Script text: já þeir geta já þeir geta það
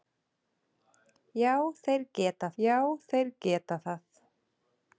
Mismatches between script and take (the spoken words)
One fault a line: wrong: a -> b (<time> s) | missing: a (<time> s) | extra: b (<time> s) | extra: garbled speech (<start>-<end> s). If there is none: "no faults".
no faults